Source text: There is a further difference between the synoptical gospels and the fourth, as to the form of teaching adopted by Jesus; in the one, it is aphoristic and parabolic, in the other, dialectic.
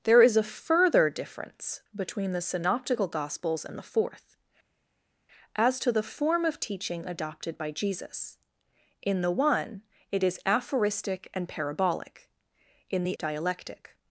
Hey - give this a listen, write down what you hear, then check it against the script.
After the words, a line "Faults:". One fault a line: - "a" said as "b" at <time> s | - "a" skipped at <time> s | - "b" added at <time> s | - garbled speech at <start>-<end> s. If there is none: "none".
There is a further difference between the synoptical gospels and the fourth, as to the form of teaching adopted by Jesus; in the one, it is aphoristic and parabolic, in the dialectic.
Faults:
- "other" skipped at 13.2 s